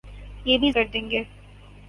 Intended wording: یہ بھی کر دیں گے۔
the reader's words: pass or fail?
pass